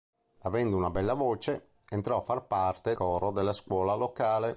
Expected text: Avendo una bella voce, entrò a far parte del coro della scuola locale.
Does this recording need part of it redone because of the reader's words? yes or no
yes